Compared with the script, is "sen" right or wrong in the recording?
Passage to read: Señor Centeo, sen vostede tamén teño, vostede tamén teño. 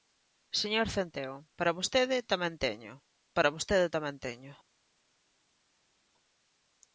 wrong